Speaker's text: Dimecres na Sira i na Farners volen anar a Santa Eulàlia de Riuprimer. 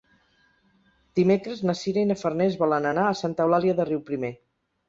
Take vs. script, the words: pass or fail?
pass